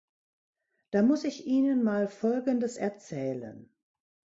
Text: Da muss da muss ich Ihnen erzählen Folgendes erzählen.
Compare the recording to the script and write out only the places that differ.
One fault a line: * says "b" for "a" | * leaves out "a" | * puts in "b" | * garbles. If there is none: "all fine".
* leaves out "da muss"
* says "mal" for "erzählen"